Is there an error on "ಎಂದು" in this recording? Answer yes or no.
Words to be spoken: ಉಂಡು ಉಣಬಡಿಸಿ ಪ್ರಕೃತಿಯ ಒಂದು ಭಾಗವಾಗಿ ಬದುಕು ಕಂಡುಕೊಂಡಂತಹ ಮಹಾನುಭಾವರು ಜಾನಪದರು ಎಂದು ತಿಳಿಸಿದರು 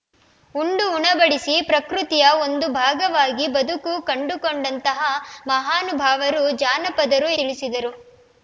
yes